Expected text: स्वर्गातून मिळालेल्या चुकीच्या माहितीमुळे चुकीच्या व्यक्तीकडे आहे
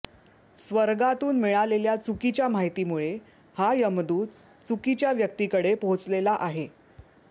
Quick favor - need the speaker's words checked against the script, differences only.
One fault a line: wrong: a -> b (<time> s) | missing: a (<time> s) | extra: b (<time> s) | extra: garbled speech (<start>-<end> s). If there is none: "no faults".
extra: हा यमदूत (3.5 s)
extra: पोहोचलेला (5.7 s)